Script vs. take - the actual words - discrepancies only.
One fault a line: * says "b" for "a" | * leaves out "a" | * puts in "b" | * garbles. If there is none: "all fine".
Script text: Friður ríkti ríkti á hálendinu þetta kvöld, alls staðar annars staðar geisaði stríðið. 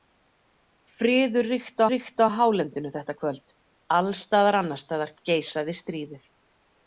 all fine